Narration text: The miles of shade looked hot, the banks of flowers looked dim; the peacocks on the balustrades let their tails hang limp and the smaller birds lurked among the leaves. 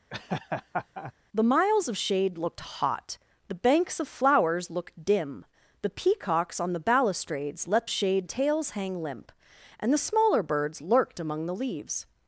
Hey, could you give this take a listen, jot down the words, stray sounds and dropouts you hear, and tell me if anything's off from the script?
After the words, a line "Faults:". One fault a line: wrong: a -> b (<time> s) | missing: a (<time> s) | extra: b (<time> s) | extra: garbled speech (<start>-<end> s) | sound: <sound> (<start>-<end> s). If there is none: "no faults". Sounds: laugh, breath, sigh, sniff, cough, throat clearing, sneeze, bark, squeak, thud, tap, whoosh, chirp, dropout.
The miles of shade looked hot, the banks of flowers looked dim; the peacocks on the balustrades let shade tails hang limp and the smaller birds lurked among the leaves.
Faults:
sound: laugh (0.1-1.1 s)
wrong: their -> shade (7.9 s)